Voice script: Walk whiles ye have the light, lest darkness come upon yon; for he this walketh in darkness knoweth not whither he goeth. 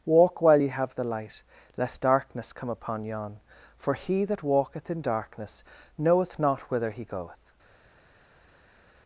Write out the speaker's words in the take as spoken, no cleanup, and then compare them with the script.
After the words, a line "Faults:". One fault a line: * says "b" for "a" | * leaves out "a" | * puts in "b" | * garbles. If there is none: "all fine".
Walk while ye have the light, lest darkness come upon yon; for he that walketh in darkness knoweth not whither he goeth.
Faults:
* says "while" for "whiles"
* says "that" for "this"